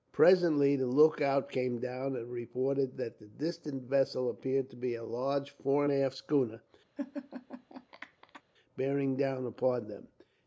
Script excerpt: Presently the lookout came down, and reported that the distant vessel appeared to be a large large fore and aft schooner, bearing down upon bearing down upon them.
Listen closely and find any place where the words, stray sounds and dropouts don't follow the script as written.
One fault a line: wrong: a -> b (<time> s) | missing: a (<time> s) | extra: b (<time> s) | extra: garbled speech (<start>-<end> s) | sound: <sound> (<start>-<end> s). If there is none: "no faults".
missing: large (5.5 s)
sound: laugh (7.0-8.4 s)
missing: bearing down upon (9.9 s)